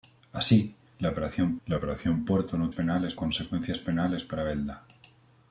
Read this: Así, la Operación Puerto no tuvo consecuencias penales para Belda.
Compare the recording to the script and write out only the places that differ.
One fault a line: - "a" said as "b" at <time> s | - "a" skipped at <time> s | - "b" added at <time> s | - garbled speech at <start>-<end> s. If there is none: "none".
- "la Operación" added at 1.6 s
- "tuvo" said as "penales" at 2.7 s